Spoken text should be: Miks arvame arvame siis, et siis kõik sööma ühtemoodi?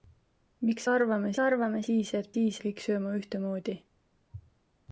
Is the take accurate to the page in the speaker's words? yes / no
yes